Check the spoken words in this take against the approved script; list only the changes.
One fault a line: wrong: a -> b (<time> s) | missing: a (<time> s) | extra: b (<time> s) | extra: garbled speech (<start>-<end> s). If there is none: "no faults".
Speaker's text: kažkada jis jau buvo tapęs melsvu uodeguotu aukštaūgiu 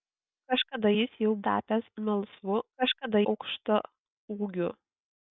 missing: buvo (1.3 s)
wrong: uodeguotu -> kažkada (2.8 s)